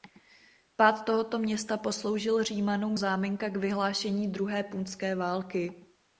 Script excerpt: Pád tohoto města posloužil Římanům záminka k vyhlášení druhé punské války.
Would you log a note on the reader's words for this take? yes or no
no